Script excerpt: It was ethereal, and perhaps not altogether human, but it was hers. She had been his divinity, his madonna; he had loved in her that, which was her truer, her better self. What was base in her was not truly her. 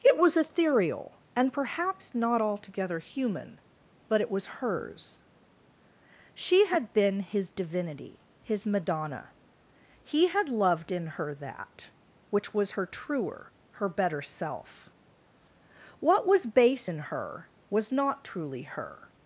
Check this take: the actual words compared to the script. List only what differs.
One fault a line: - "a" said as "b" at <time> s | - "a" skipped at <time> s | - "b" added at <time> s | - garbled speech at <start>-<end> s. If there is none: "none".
none